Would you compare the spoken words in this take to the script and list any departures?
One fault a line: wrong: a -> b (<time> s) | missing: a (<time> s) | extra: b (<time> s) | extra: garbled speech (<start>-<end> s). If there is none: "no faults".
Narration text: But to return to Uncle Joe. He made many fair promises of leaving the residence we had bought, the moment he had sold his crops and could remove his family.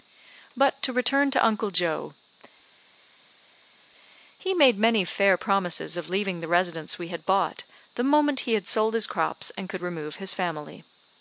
no faults